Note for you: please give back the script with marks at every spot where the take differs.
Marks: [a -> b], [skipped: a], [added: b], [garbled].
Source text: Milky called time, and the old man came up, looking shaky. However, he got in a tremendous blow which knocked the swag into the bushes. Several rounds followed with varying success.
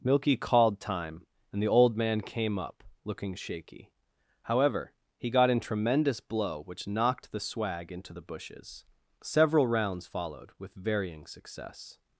Milky called time, and the old man came up, looking shaky. However, he got in [skipped: a] tremendous blow which knocked the swag into the bushes. Several rounds followed with varying success.